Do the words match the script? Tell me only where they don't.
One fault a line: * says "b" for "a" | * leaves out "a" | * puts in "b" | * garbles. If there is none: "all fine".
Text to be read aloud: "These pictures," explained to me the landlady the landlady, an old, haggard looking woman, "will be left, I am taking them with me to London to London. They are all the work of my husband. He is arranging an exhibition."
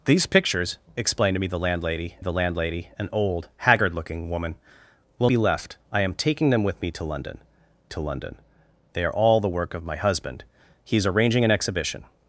all fine